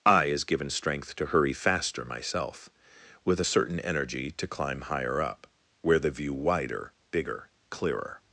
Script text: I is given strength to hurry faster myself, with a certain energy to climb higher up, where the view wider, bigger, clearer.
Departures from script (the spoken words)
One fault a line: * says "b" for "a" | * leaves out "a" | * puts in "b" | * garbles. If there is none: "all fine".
all fine